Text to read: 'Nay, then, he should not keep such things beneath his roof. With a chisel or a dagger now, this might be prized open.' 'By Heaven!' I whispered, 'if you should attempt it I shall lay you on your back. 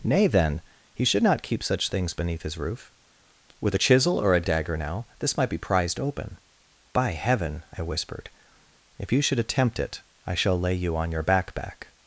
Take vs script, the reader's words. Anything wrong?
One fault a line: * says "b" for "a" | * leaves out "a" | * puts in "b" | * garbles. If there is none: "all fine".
* puts in "back"